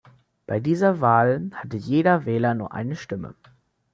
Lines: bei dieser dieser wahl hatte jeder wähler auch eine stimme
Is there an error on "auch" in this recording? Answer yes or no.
yes